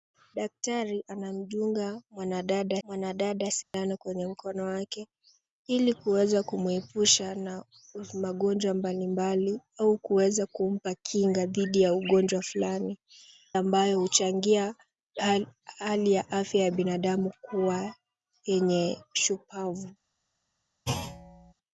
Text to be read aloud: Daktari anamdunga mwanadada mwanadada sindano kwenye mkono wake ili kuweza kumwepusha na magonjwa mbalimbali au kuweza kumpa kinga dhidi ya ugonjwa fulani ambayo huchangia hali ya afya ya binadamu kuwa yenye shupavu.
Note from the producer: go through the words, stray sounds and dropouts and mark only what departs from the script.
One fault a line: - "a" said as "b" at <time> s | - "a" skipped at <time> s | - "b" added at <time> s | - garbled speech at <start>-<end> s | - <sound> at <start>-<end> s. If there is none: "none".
- dropout at 3.6-3.7 s
- thud at 20.9-21.5 s